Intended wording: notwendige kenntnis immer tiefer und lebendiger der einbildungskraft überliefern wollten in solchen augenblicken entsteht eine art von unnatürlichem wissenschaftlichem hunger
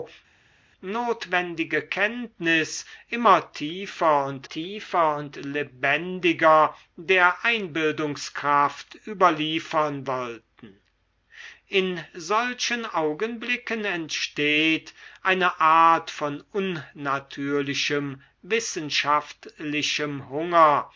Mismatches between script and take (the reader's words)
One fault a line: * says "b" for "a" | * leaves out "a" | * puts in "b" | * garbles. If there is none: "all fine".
* puts in "tiefer und"